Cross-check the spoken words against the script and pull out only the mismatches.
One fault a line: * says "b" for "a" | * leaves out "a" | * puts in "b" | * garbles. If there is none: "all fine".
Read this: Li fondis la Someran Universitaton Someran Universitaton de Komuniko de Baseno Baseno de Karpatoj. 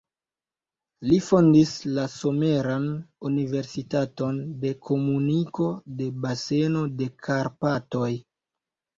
* leaves out "Someran Universitaton"
* leaves out "Baseno"